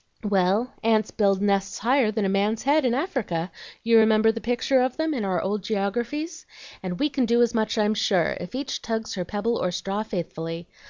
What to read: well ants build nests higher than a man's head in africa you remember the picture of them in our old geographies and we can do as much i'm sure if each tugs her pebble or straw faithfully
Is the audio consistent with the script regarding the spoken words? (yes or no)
yes